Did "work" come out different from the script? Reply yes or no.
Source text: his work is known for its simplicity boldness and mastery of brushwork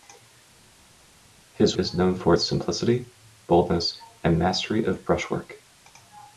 yes